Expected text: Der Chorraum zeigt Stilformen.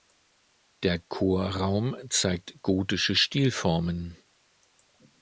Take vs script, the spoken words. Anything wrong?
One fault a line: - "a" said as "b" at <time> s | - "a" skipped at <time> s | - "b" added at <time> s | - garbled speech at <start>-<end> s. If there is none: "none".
- "gotische" added at 2.6 s